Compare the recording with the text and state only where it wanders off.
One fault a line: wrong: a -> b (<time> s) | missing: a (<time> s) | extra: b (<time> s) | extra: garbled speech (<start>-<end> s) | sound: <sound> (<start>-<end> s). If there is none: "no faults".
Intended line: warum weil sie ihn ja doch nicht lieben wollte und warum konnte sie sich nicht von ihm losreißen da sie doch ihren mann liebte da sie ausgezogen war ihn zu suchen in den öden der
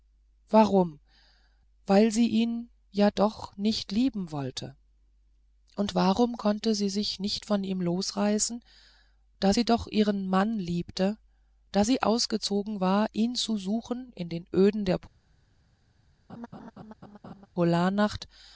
sound: laugh (16.3-17.5 s)